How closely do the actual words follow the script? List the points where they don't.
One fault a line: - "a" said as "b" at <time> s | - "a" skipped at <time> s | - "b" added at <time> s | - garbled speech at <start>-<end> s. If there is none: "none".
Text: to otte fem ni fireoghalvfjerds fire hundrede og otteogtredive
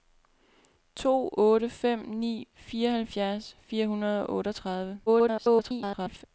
- garbled speech at 5.1-6.2 s